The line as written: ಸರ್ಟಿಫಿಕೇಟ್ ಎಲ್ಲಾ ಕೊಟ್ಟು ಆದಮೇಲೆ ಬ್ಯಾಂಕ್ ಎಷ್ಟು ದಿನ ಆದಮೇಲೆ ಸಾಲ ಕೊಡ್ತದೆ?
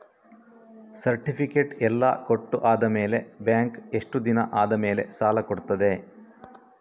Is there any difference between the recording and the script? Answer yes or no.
no